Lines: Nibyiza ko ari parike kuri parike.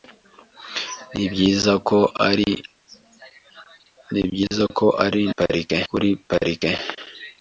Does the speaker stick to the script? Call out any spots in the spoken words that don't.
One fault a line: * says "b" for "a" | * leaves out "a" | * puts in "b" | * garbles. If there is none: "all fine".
all fine